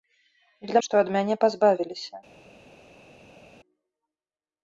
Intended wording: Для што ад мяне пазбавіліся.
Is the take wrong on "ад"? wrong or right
right